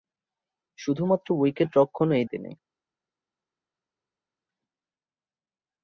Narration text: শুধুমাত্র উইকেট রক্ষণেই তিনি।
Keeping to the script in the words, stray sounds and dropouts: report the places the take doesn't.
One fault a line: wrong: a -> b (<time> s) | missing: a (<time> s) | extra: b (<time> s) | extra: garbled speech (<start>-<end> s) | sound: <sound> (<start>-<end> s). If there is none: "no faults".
no faults